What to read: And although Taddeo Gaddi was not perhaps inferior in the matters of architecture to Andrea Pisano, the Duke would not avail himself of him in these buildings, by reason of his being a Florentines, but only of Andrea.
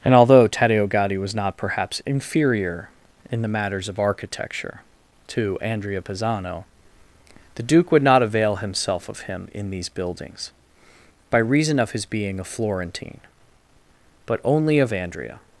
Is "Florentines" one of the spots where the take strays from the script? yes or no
yes